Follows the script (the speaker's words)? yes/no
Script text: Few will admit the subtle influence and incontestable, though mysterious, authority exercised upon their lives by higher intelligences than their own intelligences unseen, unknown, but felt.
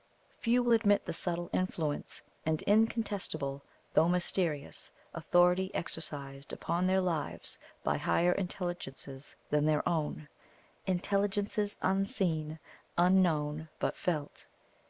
yes